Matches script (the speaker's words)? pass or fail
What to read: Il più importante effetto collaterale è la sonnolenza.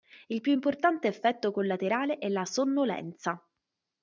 pass